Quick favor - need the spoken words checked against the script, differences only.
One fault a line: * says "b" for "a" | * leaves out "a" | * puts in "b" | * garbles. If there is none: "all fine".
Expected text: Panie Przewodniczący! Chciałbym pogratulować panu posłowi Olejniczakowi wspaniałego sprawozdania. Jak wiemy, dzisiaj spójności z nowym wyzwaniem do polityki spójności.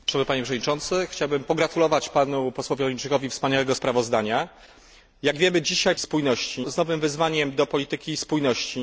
all fine